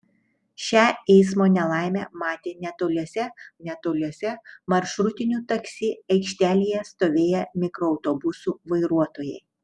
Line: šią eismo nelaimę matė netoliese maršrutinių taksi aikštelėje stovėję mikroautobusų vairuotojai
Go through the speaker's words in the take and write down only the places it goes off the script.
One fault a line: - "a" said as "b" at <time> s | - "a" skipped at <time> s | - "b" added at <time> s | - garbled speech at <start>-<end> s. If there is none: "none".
- "netoliese" added at 3.7 s